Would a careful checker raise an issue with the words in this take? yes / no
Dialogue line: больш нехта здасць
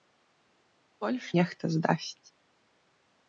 no